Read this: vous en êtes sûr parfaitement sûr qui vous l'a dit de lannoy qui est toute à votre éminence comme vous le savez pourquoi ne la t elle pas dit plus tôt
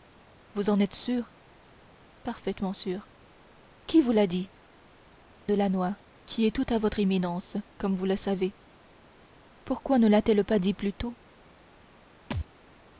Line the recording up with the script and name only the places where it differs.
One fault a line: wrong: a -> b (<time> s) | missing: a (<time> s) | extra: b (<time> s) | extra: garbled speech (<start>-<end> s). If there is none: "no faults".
no faults